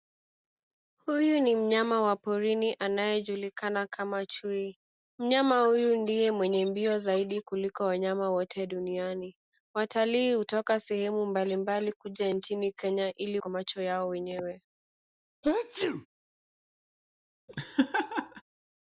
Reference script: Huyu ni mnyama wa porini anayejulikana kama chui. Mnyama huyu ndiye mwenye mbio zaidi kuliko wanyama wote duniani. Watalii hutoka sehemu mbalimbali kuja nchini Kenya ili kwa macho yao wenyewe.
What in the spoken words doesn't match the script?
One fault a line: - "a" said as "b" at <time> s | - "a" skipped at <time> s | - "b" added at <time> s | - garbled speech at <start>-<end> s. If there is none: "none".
none